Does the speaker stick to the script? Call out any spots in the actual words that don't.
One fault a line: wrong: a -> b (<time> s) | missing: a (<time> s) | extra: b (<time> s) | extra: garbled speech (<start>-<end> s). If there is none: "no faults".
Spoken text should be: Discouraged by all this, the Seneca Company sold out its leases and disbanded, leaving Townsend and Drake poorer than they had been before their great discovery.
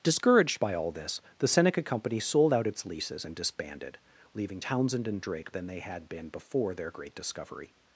missing: poorer (5.5 s)